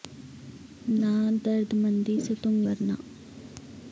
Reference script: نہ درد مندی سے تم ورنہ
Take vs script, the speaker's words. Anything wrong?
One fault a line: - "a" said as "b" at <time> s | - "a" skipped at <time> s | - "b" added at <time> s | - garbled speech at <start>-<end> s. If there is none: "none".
none